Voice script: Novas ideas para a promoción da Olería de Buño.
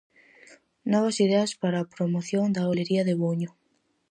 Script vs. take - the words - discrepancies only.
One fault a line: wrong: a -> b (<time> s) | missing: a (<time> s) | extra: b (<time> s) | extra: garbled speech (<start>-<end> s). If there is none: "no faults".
no faults